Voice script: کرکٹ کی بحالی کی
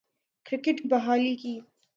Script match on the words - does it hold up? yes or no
no